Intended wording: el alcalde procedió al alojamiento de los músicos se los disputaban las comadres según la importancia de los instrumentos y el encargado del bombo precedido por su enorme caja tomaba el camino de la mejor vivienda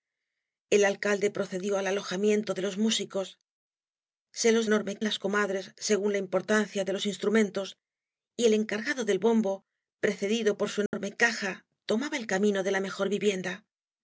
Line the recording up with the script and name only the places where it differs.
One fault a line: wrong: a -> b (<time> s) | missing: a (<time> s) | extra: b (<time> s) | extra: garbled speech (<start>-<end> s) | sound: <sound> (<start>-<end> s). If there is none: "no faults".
wrong: disputaban -> enorme (4.7 s)
sound: dropout (10.9-10.9 s)